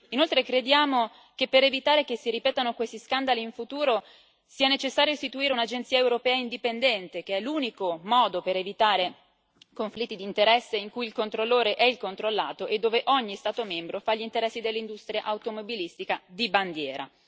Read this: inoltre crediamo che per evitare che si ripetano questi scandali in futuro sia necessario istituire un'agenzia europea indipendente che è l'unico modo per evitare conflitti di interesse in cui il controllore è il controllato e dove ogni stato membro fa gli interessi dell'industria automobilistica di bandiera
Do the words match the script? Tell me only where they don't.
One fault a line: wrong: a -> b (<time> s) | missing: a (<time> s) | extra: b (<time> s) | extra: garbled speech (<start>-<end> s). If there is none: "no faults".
no faults